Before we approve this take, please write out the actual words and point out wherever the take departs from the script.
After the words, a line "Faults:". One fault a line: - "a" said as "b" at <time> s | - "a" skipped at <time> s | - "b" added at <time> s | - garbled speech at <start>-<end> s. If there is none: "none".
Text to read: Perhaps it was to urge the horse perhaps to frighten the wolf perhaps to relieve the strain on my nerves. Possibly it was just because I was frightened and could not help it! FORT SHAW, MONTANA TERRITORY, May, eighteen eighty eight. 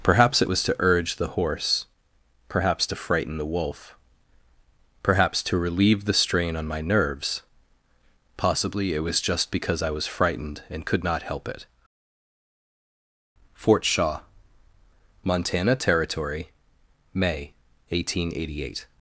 Perhaps it was to urge the horse perhaps to frighten the wolf perhaps to relieve the strain on my nerves. Possibly it was just because I was frightened and could not help it! FORT SHAW, MONTANA TERRITORY, May, eighteen eighty eight.
Faults:
none